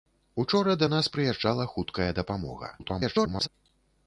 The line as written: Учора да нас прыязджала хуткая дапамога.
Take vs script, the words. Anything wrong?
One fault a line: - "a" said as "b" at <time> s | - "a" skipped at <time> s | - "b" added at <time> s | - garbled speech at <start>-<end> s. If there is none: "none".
- garbled speech at 2.8-3.5 s